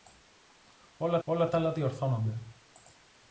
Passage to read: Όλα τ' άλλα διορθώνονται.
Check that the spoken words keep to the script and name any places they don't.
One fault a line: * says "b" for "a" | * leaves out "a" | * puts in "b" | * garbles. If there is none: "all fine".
* puts in "όλα"